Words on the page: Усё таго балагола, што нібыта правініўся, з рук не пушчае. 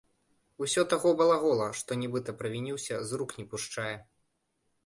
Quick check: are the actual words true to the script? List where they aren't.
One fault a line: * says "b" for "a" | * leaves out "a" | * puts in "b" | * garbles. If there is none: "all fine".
all fine